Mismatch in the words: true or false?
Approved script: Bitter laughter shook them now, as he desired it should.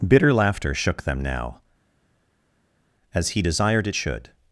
false